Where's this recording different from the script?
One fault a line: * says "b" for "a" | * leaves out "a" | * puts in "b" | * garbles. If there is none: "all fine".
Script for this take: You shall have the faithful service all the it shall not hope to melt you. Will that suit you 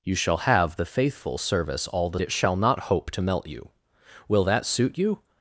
all fine